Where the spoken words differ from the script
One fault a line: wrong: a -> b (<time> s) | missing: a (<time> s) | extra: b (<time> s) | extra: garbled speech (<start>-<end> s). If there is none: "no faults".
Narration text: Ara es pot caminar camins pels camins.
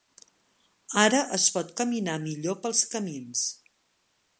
wrong: camins -> millor (2.3 s)